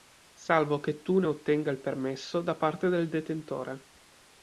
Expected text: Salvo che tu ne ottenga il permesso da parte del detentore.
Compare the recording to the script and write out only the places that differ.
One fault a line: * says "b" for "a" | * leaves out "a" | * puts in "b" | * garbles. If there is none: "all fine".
all fine